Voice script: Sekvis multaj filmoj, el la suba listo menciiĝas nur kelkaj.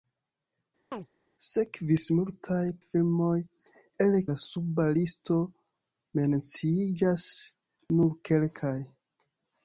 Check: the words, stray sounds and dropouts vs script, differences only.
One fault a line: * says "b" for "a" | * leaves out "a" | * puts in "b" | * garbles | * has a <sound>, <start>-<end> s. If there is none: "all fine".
* has a chirp, 0.9-1.1 s